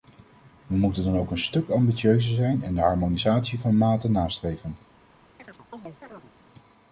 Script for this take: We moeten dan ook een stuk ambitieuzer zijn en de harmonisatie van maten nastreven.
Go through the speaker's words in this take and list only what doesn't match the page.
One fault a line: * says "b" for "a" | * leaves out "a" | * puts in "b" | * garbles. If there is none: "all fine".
all fine